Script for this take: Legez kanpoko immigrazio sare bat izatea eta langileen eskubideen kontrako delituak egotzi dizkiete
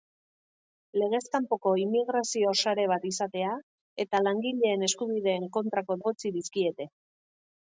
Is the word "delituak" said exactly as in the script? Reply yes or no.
no